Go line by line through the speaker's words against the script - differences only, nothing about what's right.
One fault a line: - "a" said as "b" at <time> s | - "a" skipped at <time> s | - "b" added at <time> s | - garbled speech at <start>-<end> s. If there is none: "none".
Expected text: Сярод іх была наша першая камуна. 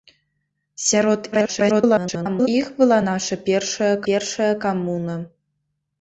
- garbled speech at 1.3-2.5 s
- "першая" added at 4.1 s